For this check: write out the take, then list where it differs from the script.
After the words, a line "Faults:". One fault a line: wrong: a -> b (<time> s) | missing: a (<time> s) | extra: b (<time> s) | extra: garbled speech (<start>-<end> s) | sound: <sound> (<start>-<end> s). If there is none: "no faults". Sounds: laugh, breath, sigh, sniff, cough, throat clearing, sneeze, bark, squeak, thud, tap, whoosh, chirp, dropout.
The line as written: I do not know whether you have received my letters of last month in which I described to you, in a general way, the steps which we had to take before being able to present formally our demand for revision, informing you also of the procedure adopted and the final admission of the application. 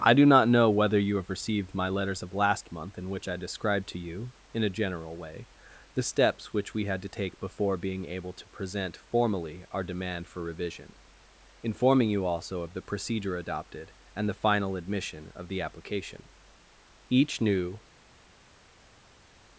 I do not know whether you have received my letters of last month in which I described to you, in a general way, the steps which we had to take before being able to present formally our demand for revision, informing you also of the procedure adopted and the final admission of the application. Each new
Faults:
extra: Each new (17.1 s)